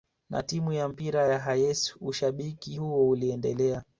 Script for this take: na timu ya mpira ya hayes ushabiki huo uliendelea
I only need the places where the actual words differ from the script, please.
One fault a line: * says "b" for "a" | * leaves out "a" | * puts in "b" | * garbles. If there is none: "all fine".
all fine